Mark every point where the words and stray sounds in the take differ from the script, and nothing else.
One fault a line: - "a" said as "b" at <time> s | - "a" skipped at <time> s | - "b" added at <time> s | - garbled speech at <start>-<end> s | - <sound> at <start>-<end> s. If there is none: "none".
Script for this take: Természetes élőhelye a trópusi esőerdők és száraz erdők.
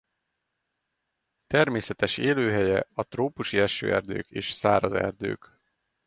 none